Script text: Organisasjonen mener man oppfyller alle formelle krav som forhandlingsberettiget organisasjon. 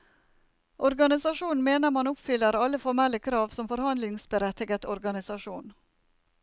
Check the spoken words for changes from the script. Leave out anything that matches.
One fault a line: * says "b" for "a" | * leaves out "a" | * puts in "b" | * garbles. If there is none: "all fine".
all fine